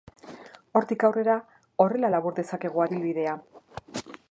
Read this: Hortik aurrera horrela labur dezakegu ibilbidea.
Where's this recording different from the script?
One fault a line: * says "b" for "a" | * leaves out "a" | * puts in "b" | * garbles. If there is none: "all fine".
all fine